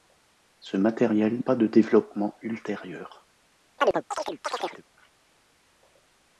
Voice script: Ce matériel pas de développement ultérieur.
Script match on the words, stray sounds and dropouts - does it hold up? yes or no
no